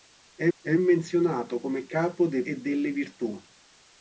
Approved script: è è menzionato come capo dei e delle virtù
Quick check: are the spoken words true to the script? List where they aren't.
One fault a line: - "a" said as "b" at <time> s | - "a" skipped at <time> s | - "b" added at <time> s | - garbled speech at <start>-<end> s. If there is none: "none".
none